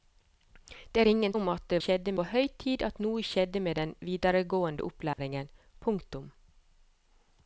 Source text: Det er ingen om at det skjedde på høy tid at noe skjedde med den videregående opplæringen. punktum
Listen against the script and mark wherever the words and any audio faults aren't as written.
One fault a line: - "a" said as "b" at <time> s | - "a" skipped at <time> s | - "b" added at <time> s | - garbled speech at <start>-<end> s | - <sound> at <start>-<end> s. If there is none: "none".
- dropout at 5.1-5.2 s